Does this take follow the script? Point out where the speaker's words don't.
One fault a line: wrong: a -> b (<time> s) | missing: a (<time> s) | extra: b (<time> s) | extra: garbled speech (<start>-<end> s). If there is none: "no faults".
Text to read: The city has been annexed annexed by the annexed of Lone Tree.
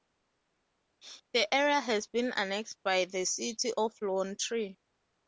wrong: city -> area (1.5 s)
missing: annexed (2.8 s)
wrong: annexed -> city (3.3 s)